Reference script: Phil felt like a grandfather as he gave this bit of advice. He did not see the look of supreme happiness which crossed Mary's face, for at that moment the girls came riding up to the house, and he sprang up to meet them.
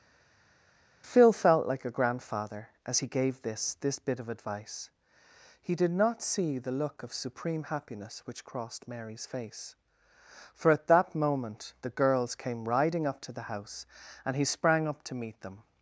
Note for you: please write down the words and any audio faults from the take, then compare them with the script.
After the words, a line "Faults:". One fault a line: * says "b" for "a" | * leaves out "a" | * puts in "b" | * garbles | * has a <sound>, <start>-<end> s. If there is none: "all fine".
Phil felt like a grandfather as he gave this this bit of advice. He did not see the look of supreme happiness which crossed Mary's face, for at that moment the girls came riding up to the house, and he sprang up to meet them.
Faults:
* puts in "this"